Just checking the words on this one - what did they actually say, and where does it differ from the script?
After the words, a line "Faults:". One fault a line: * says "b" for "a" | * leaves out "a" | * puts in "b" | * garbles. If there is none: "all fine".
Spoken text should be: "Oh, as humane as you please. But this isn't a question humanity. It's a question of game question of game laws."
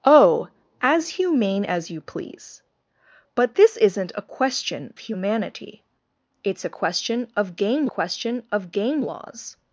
"Oh, as humane as you please. But this isn't a question humanity. It's a question of game question of game laws."
Faults:
all fine